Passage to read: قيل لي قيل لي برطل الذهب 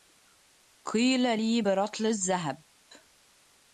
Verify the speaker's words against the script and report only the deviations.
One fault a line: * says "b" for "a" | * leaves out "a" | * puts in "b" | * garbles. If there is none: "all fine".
* leaves out "قيل لي"